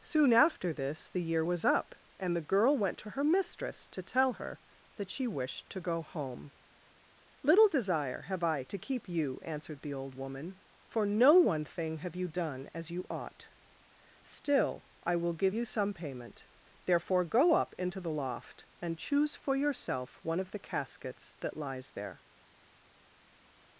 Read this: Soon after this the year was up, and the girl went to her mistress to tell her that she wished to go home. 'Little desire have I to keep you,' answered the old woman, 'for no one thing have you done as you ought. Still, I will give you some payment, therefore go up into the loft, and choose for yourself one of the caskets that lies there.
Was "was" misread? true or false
false